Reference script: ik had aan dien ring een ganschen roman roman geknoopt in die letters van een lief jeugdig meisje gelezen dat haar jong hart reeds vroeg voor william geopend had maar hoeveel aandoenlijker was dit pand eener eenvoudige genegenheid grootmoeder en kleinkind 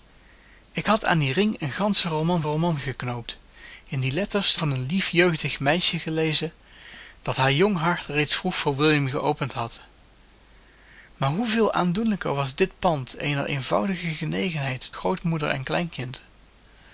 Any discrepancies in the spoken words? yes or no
no